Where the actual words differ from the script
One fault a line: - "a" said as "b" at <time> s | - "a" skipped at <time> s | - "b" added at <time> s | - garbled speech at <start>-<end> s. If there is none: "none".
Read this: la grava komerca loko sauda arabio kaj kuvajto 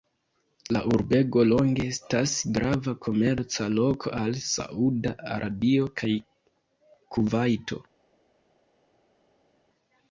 - "urbego longe estas" added at 0.9 s
- "al" added at 4.2 s